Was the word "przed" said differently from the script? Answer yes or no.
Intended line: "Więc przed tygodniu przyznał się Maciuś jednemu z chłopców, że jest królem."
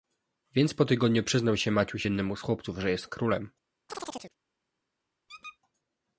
yes